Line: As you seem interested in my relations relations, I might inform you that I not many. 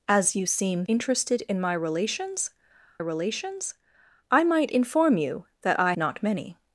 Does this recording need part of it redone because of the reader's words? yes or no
no